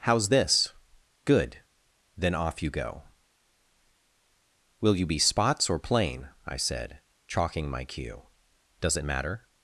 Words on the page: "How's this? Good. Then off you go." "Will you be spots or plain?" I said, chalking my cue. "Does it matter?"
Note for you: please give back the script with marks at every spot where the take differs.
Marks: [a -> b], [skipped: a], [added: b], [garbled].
"How's this? Good. Then off you go." "Will you be spots or plain?" I said, chalking my cue. "Does it matter?"